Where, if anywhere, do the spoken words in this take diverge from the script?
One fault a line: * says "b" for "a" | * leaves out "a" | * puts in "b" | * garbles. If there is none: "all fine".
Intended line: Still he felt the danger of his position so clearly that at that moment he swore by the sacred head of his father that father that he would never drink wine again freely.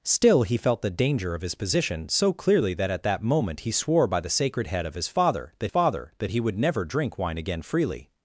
all fine